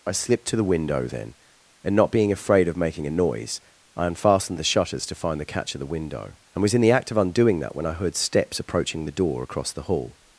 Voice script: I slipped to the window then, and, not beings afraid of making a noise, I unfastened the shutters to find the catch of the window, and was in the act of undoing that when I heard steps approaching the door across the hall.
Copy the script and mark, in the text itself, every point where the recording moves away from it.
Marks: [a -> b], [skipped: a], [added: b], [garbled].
I slipped to the window then, and, not [beings -> being] afraid of making a noise, I unfastened the shutters to find the catch of the window, and was in the act of undoing that when I heard steps approaching the door across the hall.